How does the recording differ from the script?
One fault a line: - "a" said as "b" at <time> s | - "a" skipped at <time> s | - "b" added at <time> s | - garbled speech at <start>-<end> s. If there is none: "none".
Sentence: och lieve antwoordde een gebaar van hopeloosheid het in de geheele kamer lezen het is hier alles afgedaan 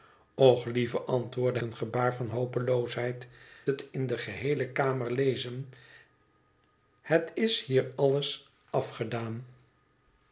none